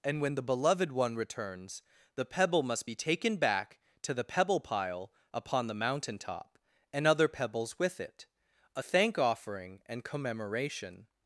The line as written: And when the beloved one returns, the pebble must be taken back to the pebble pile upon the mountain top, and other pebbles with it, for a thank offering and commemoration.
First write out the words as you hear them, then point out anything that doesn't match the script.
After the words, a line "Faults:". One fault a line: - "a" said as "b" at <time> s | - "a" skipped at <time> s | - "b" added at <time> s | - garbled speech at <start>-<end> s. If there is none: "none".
And when the beloved one returns, the pebble must be taken back to the pebble pile upon the mountain top, and other pebbles with it, a thank offering and commemoration.
Faults:
- "for" skipped at 8.3 s